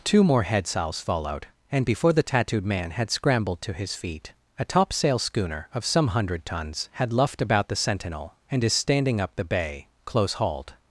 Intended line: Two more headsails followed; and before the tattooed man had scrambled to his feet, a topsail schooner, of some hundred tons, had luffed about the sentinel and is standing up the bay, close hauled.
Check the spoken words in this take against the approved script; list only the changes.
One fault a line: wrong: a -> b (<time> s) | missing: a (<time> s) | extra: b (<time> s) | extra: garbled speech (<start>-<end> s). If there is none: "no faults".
no faults